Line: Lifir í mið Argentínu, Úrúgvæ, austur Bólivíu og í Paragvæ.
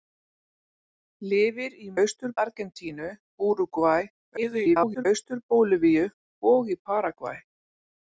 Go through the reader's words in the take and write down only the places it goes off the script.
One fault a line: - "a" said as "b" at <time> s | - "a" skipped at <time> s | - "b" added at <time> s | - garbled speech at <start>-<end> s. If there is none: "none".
- "mið" said as "austur" at 2.1 s
- garbled speech at 4.4-5.1 s